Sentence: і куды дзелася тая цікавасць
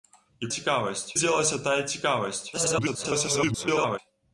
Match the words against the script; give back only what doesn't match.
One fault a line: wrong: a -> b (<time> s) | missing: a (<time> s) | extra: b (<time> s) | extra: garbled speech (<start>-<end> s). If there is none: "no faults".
wrong: куды -> цікавасць (0.6 s)
extra: garbled speech (2.5-4.0 s)